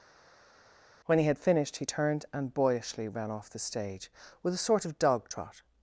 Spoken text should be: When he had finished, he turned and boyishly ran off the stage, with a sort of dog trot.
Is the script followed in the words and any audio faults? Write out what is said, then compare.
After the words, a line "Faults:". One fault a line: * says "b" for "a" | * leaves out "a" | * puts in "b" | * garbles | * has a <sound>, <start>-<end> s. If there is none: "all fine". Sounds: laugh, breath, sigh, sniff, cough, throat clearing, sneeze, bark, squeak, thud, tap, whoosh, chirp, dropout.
When he had finished, he turned and boyishly ran off the stage, with a sort of dog trot.
Faults:
all fine